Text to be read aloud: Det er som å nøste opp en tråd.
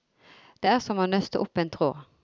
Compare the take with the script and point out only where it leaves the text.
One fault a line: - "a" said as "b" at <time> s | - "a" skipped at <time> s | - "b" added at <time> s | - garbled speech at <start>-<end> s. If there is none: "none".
none